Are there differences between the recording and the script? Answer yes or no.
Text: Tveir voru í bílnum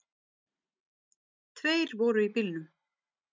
no